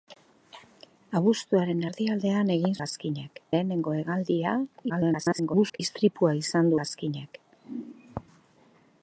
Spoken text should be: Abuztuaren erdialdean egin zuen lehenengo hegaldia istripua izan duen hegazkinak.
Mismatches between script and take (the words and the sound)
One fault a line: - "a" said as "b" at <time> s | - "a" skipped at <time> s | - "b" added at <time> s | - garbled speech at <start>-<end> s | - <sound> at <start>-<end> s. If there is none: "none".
- "zuen" said as "hegazkinak" at 2.8 s
- garbled speech at 4.9-5.8 s
- "duen" skipped at 6.7 s